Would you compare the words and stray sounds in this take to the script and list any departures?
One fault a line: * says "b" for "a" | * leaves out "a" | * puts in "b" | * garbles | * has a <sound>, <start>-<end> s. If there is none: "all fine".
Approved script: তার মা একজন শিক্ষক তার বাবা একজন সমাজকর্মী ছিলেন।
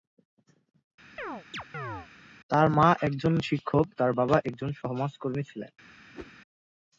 * has a chirp, 1.2-2.1 s
* has a whoosh, 6.1-6.3 s